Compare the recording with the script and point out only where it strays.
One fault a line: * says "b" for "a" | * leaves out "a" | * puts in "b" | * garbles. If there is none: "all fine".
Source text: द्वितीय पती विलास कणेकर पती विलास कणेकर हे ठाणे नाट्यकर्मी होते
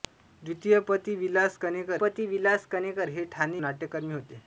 all fine